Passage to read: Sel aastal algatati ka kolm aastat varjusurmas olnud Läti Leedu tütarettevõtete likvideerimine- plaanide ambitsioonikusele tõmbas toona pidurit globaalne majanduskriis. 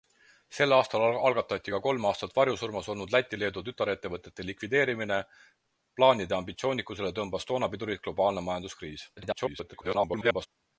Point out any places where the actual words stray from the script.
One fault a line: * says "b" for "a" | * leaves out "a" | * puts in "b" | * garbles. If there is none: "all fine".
* garbles